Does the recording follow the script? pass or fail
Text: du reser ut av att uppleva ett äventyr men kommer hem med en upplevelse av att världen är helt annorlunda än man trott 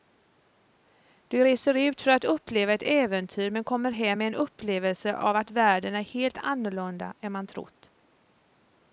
fail